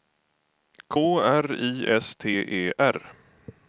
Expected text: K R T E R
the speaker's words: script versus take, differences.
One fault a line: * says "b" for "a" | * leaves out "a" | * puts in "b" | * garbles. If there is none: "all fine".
* puts in "I S"